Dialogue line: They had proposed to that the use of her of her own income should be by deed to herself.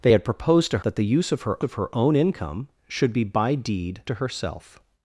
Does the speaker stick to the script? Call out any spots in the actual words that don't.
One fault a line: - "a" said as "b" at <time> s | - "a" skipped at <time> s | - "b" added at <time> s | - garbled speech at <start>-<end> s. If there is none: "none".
none